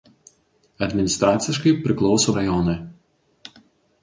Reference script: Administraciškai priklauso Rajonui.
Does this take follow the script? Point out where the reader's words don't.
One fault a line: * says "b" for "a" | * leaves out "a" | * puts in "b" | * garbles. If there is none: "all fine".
all fine